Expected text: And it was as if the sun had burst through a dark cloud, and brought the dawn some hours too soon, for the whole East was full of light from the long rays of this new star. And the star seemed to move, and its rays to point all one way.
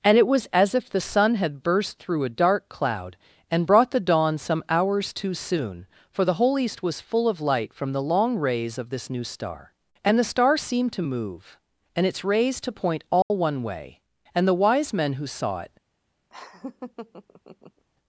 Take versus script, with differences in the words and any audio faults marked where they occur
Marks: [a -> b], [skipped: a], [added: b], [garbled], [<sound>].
And it was as if the sun had burst through a dark cloud, and brought the dawn some hours too soon, for the whole East was full of light from the long rays of this new star. And the star seemed to move, and its rays to point all [dropout] one way. [added: And the wise men who saw it] [laugh]